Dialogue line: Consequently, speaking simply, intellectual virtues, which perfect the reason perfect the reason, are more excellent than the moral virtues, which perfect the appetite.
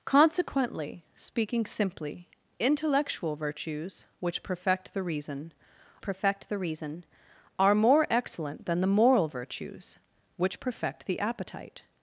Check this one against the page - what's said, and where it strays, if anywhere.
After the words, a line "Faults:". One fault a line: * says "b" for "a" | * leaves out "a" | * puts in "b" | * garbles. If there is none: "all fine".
Consequently, speaking simply, intellectual virtues, which perfect the reason perfect the reason, are more excellent than the moral virtues, which perfect the appetite.
Faults:
all fine